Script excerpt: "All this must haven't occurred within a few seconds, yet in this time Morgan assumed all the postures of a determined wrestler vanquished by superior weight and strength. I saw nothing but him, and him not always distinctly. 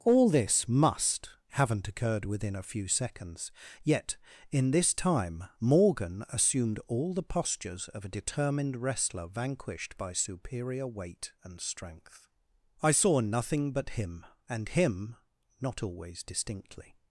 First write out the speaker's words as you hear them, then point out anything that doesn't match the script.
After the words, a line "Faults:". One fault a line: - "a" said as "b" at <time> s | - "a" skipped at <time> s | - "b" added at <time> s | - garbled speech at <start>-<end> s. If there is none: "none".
"All this must haven't occurred within a few seconds, yet in this time Morgan assumed all the postures of a determined wrestler vanquished by superior weight and strength. I saw nothing but him, and him not always distinctly.
Faults:
none